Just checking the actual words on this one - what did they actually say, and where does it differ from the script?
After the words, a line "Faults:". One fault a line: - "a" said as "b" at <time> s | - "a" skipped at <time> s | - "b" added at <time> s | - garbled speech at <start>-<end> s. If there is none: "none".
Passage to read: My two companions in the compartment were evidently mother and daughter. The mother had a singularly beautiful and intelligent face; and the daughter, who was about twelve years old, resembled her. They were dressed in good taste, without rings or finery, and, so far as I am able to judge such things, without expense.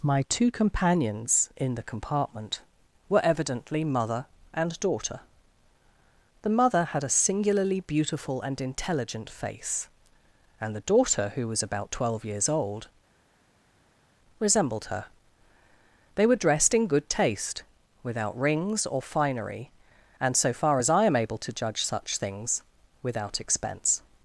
My two companions in the compartment were evidently mother and daughter. The mother had a singularly beautiful and intelligent face; and the daughter, who was about twelve years old, resembled her. They were dressed in good taste, without rings or finery, and, so far as I am able to judge such things, without expense.
Faults:
none